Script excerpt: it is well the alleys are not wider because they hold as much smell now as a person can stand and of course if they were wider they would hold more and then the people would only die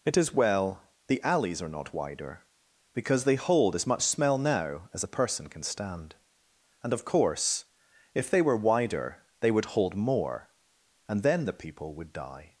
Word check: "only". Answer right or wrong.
wrong